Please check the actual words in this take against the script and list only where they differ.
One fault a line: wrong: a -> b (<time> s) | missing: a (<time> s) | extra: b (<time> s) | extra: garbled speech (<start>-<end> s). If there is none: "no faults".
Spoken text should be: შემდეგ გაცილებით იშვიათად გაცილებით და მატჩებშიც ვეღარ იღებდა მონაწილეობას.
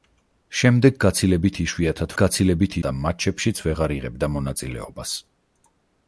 no faults